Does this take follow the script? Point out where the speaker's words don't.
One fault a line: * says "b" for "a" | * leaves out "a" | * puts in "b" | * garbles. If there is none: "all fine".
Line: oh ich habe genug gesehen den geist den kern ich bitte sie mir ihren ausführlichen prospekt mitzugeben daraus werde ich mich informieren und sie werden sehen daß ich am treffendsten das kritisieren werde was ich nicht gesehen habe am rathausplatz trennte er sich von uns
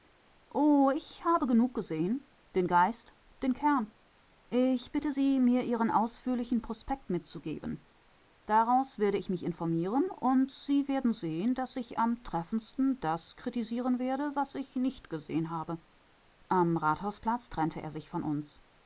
all fine